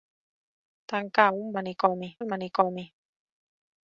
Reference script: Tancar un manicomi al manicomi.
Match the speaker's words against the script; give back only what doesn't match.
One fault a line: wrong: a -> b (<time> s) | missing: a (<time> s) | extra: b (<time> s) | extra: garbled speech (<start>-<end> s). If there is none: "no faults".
no faults